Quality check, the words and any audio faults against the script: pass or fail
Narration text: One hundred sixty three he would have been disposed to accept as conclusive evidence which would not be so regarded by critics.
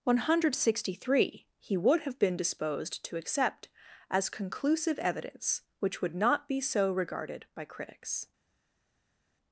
pass